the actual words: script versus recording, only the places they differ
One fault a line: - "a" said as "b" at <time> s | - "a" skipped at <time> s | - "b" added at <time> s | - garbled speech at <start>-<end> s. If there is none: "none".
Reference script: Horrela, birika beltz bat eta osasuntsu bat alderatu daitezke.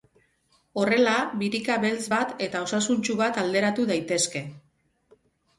none